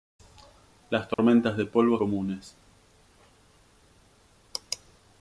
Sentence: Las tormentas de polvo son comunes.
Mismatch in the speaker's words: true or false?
true